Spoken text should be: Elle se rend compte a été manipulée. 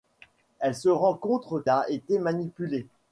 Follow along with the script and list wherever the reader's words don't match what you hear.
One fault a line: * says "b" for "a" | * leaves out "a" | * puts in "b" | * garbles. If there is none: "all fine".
all fine